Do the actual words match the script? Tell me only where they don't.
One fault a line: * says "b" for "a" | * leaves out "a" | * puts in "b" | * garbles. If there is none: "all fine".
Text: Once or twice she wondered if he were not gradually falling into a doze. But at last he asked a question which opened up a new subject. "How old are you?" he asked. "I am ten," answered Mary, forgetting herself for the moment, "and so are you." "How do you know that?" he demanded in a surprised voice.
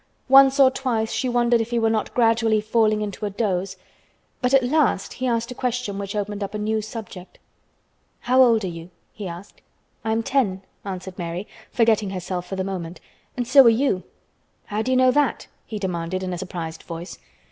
all fine